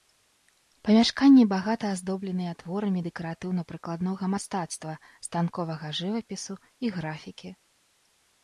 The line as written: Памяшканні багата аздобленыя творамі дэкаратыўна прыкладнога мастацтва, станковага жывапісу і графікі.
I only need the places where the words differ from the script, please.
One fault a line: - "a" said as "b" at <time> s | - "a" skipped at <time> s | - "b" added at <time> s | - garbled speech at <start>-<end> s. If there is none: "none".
none